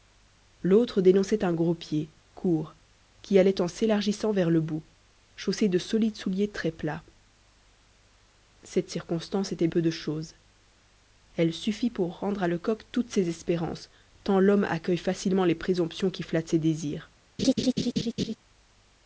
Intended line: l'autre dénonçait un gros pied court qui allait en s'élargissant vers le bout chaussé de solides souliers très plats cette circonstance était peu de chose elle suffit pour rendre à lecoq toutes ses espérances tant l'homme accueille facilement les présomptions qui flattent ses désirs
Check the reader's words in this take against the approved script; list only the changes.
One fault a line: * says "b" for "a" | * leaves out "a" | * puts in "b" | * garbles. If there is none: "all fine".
all fine